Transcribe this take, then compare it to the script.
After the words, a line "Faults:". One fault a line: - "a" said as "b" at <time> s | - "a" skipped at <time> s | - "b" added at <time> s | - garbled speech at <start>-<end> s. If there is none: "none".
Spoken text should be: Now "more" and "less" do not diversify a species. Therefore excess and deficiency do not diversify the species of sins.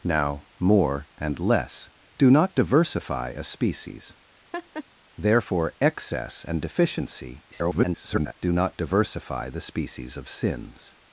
Now "more" and "less" do not diversify a species. Therefore excess and deficiency [garbled] do not diversify the species of sins.
Faults:
- garbled speech at 7.5-8.3 s